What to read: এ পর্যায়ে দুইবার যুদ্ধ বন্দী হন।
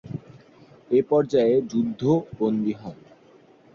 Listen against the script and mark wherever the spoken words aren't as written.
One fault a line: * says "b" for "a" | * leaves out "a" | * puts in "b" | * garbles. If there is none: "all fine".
* leaves out "দুইবার"